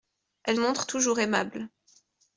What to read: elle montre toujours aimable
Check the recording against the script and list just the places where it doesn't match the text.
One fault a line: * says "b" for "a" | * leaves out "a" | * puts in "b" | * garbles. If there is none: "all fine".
all fine